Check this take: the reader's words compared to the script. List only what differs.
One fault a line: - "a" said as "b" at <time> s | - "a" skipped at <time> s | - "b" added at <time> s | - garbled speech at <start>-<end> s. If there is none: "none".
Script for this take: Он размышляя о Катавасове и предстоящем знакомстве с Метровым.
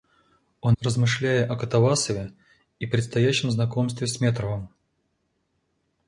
none